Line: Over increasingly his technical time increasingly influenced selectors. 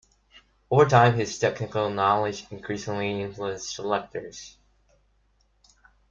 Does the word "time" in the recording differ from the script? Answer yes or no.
yes